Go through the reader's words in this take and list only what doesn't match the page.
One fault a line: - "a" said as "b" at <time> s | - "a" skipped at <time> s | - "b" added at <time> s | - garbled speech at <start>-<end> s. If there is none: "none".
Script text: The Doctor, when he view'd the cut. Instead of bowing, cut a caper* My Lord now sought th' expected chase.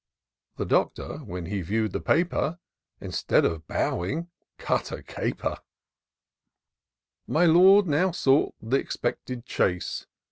- "cut" said as "paper" at 2.0 s